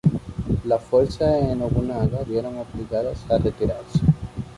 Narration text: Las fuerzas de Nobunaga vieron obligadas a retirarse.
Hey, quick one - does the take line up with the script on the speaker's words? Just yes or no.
yes